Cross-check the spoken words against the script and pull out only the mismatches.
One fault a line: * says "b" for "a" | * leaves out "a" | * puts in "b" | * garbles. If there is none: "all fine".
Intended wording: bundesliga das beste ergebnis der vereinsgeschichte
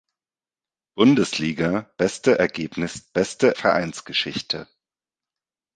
* leaves out "das"
* says "beste" for "der"